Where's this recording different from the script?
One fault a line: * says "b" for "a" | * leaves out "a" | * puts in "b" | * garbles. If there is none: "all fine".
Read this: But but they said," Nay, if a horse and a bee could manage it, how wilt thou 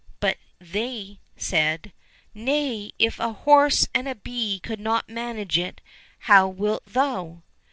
* leaves out "but"
* puts in "not"